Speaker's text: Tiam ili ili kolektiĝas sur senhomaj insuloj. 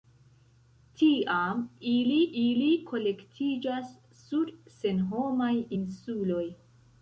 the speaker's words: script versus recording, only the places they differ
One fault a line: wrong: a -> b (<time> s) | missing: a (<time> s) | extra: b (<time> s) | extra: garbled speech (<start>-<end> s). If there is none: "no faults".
no faults